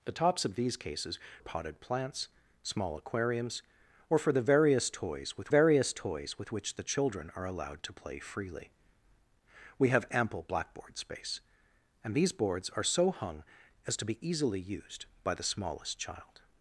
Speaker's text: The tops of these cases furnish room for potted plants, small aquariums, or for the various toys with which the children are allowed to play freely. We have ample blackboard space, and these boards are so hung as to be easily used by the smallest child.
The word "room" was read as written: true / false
false